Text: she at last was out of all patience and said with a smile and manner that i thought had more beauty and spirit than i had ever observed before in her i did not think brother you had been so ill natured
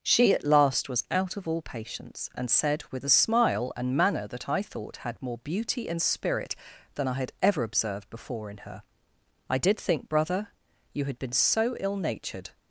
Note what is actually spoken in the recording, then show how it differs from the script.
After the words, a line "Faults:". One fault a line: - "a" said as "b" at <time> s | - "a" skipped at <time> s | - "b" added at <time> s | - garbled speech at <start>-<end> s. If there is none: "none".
she at last was out of all patience and said with a smile and manner that i thought had more beauty and spirit than i had ever observed before in her i did think brother you had been so ill natured
Faults:
- "not" skipped at 9.8 s